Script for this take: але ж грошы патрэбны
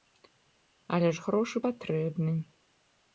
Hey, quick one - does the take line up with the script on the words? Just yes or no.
yes